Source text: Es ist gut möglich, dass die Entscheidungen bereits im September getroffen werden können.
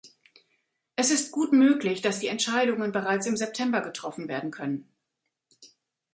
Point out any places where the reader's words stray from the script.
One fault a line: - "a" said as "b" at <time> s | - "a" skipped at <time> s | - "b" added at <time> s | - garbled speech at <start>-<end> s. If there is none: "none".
none